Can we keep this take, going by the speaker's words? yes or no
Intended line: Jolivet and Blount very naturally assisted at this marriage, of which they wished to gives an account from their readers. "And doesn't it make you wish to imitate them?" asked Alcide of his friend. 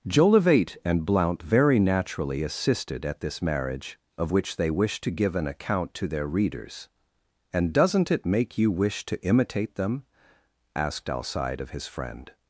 no